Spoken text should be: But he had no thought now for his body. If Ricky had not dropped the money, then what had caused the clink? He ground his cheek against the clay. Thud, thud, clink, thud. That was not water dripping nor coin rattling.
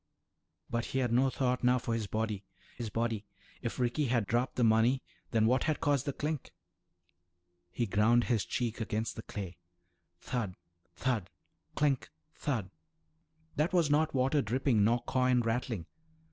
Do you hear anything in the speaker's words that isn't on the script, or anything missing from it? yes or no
yes